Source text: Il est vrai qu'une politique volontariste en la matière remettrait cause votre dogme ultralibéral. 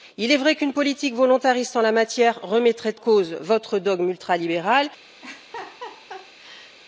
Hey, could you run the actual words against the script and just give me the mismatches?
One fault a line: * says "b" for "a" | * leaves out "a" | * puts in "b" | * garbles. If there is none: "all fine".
all fine